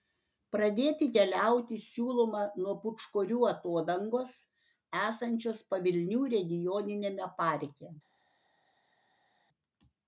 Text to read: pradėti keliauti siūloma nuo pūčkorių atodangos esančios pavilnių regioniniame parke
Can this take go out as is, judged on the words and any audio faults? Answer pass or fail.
pass